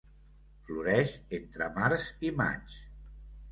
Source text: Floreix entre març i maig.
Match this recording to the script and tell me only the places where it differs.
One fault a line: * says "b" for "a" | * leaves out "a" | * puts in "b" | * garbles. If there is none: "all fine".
all fine